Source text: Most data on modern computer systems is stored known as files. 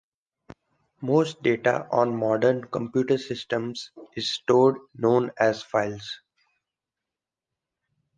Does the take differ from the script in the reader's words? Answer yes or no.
no